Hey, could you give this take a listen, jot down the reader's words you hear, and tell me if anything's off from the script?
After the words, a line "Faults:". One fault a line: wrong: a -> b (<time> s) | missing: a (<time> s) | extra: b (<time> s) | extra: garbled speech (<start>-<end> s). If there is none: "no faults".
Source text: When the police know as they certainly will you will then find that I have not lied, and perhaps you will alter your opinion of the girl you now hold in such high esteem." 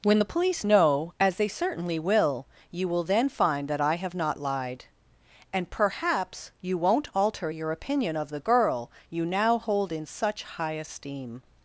When the police know as they certainly will you will then find that I have not lied, and perhaps you won't alter your opinion of the girl you now hold in such high esteem."
Faults:
wrong: will -> won't (6.8 s)